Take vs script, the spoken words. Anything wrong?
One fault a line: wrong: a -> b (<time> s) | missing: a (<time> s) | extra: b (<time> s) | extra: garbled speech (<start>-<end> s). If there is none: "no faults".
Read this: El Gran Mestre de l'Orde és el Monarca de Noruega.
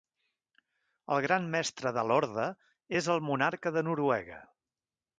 no faults